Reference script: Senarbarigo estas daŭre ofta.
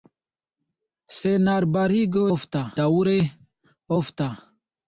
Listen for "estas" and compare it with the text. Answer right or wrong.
wrong